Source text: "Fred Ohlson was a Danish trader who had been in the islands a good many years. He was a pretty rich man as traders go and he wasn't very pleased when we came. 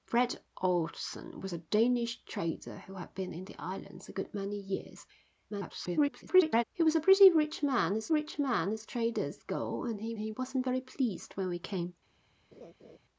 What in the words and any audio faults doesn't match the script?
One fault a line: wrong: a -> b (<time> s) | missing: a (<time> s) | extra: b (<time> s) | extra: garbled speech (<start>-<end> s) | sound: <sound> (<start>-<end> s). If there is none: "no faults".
extra: garbled speech (5.5-6.6 s)
extra: rich man as (8.1 s)
extra: he (10.2 s)
sound: laugh (12.5-13.0 s)